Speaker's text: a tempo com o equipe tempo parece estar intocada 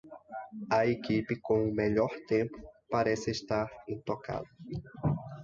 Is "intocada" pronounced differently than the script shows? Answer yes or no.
no